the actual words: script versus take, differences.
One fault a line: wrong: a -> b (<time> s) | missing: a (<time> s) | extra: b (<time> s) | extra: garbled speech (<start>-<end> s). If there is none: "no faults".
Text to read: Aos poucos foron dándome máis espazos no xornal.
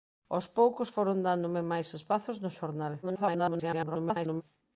extra: garbled speech (3.0-4.4 s)